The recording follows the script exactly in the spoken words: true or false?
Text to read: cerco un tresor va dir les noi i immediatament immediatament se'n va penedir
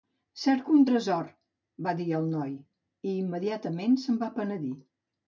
false